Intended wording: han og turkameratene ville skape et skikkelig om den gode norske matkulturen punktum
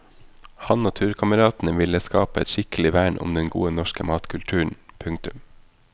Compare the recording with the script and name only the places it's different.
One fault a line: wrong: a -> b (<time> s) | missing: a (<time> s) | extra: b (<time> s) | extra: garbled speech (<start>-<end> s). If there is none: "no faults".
extra: vern (3.0 s)